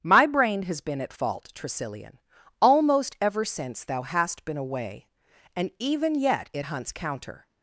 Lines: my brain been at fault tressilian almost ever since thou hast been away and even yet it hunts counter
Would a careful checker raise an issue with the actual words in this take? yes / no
yes